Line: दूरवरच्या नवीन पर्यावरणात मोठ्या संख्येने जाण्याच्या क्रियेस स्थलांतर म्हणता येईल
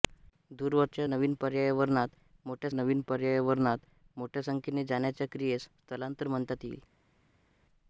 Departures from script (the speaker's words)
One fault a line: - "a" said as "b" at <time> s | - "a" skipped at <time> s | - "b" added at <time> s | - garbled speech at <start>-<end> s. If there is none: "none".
- "नवीन पर्यावरणात मोठ्या" added at 2.7 s